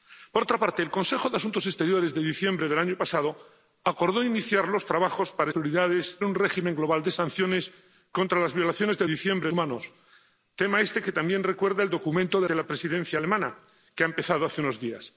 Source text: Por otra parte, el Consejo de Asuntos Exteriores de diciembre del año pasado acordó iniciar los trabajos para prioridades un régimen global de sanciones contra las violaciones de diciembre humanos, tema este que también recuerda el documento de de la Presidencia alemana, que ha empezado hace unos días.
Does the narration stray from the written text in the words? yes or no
no